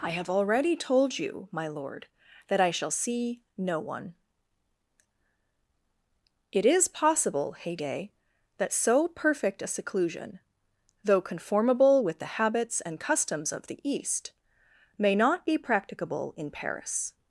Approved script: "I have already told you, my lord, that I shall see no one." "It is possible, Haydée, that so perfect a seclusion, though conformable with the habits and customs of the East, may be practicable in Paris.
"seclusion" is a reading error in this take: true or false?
false